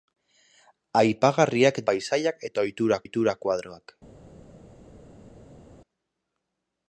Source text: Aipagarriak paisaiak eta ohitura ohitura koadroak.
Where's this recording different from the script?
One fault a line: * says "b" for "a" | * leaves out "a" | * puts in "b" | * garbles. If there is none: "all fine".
all fine